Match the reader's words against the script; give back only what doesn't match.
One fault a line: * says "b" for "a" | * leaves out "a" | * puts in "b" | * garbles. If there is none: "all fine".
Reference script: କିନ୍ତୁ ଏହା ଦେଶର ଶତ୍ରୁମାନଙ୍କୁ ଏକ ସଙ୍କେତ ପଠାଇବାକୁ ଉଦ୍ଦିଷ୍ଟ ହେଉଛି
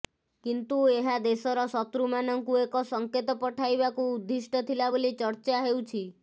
* puts in "ଥିଲା ବୋଲି ଚର୍ଚ୍ଚା"